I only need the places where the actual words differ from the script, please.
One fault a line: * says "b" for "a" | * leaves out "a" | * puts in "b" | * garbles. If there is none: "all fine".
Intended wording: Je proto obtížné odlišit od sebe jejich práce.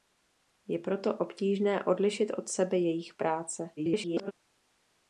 * garbles